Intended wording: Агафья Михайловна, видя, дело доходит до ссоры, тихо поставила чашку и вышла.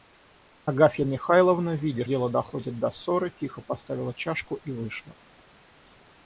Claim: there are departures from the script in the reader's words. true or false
false